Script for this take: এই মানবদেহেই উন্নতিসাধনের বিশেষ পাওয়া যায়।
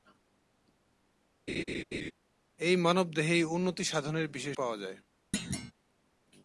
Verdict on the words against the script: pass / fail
pass